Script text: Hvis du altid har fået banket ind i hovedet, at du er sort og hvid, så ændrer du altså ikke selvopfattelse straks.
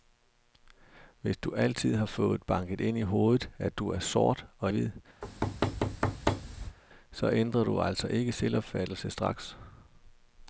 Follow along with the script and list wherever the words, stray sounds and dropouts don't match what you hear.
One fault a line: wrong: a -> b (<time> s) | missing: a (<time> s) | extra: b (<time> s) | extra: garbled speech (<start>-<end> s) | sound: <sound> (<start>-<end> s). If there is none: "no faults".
sound: thud (5.2-6.8 s)